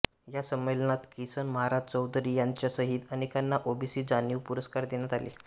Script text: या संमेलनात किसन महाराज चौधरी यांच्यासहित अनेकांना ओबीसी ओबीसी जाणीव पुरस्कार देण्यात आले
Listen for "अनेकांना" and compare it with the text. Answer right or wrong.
right